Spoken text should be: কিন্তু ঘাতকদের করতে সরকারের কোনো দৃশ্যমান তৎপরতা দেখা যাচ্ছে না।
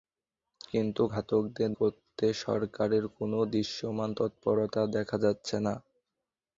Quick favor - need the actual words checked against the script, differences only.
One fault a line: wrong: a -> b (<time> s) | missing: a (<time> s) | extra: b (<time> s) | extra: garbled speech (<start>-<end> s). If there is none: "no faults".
no faults